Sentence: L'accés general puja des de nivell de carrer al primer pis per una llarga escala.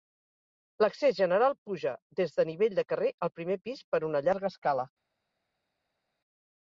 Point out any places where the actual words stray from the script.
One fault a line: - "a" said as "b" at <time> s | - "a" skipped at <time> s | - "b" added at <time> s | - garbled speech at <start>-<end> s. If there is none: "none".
none